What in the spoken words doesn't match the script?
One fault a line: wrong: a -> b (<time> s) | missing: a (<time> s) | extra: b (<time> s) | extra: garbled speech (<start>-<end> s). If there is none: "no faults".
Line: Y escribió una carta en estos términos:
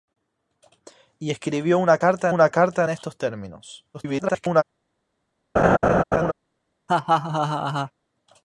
extra: una carta (2.3 s)
extra: garbled speech (3.9-4.6 s)